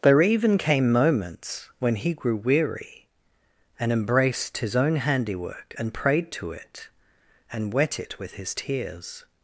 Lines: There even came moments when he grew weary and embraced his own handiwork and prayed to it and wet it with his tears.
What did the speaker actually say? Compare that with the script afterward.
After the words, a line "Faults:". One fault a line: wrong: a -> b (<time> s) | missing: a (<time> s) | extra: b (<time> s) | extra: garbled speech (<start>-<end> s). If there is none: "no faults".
There even came moments when he grew weary and embraced his own handiwork and prayed to it and wet it with his tears.
Faults:
no faults